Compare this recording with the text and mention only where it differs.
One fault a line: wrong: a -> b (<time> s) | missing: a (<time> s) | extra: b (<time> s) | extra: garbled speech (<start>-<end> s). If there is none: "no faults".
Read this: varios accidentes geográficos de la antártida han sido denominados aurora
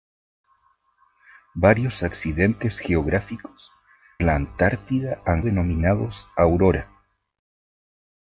missing: de (3.7 s)
missing: sido (5.4 s)